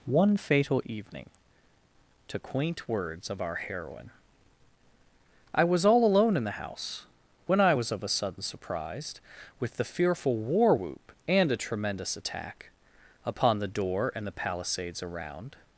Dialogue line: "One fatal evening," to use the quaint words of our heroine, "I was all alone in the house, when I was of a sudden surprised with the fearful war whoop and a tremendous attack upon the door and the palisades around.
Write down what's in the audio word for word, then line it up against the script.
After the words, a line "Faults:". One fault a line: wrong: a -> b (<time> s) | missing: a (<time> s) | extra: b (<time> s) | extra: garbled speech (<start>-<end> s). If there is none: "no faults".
"One fatal evening," to quaint words of our heroine, "I was all alone in the house, when I was of a sudden surprised with the fearful war whoop and a tremendous attack upon the door and the palisades around.
Faults:
missing: use the (2.4 s)